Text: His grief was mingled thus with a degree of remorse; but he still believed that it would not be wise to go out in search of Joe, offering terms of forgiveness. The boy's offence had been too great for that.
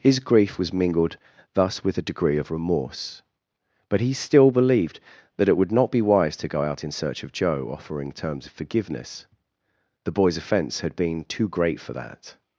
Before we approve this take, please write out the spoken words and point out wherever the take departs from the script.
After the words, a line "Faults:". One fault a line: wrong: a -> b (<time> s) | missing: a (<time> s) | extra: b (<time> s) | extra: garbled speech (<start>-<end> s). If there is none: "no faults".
His grief was mingled thus with a degree of remorse; but he still believed that it would not be wise to go out in search of Joe, offering terms of forgiveness. The boy's offence had been too great for that.
Faults:
no faults